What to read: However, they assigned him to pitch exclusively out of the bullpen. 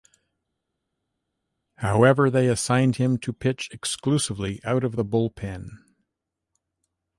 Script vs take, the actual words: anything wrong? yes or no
no